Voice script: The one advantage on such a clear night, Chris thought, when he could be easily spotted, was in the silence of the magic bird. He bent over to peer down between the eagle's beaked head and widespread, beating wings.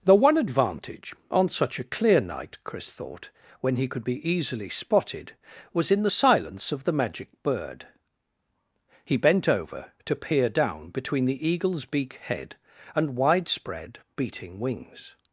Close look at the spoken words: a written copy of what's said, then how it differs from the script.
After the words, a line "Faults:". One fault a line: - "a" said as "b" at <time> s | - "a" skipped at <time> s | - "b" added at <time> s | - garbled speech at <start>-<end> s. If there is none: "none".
The one advantage on such a clear night, Chris thought, when he could be easily spotted, was in the silence of the magic bird. He bent over to peer down between the eagle's beak head and widespread, beating wings.
Faults:
- "beaked" said as "beak" at 11.8 s